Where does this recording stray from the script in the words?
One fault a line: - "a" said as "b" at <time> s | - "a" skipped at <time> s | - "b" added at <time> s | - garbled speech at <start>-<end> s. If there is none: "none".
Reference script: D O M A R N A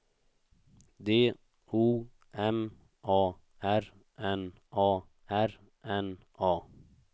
- "R N A" added at 5.3 s